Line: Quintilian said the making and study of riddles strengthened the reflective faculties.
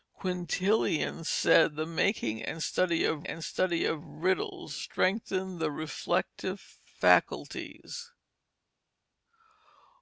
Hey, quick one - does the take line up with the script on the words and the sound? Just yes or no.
no